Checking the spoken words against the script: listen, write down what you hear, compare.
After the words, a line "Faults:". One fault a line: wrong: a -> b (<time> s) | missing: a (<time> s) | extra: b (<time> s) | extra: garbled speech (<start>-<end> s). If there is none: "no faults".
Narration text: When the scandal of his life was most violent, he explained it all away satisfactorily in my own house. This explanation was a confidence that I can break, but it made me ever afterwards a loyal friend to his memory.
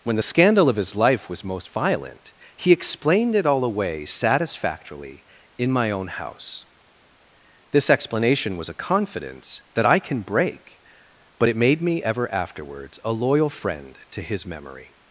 When the scandal of his life was most violent, he explained it all away satisfactorily in my own house. This explanation was a confidence that I can break, but it made me ever afterwards a loyal friend to his memory.
Faults:
no faults